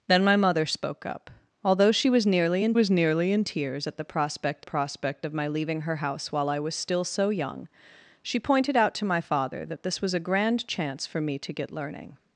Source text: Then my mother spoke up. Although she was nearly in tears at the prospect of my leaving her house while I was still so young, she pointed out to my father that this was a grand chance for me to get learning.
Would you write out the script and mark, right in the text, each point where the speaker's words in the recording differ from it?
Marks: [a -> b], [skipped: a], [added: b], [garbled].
Then my mother spoke up. Although she was nearly in [added: was nearly in] tears at the prospect [added: prospect] of my leaving her house while I was still so young, she pointed out to my father that this was a grand chance for me to get learning.